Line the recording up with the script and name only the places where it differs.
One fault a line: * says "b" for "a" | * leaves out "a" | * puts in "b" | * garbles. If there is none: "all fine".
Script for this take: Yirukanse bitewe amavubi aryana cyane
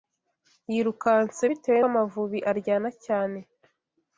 all fine